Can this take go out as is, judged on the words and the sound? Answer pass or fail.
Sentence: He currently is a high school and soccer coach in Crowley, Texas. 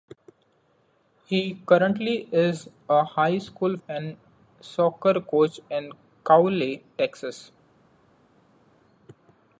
pass